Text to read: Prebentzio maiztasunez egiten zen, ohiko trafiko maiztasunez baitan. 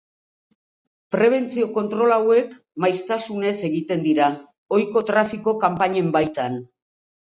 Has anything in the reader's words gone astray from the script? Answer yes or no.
yes